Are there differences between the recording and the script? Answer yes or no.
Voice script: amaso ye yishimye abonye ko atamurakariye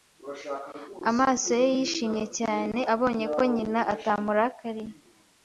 yes